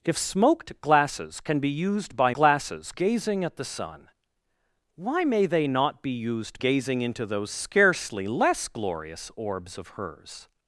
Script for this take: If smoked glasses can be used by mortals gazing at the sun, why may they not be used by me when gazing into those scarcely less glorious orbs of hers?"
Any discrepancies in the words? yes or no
yes